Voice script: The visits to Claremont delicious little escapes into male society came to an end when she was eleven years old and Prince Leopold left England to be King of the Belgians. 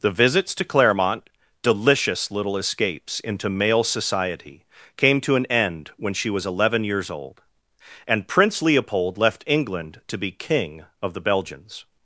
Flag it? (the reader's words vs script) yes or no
no